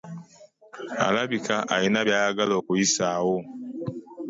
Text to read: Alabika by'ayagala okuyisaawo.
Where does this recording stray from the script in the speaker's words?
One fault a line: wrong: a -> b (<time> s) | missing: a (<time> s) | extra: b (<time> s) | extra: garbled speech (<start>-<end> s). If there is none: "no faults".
extra: alina (1.8 s)